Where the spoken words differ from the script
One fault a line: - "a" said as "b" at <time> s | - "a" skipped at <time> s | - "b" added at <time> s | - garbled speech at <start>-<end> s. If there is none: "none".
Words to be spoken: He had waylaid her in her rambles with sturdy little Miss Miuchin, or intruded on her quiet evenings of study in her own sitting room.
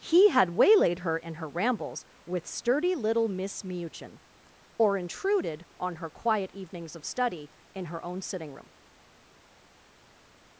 none